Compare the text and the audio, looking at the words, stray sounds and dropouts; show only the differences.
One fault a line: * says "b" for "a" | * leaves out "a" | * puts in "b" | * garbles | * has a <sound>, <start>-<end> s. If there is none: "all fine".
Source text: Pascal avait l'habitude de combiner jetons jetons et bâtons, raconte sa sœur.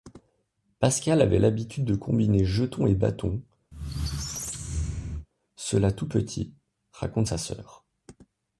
* leaves out "jetons"
* has a squeak, 3.7-5.3 s
* puts in "cela tout petit"